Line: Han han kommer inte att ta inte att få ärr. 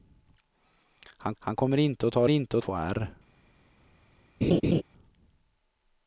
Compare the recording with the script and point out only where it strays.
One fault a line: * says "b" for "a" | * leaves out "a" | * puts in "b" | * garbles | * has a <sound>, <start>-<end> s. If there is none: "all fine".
* has a laugh, 4.4-4.8 s